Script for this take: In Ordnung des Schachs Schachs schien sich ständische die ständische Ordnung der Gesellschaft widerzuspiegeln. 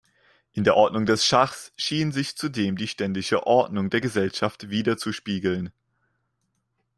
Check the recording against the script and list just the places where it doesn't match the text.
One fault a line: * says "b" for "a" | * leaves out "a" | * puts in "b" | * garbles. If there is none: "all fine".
* puts in "der"
* leaves out "Schachs"
* says "zudem" for "ständische"